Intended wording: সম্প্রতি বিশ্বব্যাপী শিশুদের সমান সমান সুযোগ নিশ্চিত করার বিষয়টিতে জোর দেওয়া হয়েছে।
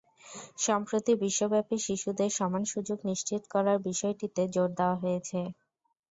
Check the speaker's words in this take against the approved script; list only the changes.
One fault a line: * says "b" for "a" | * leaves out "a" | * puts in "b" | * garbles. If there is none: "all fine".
* leaves out "সমান"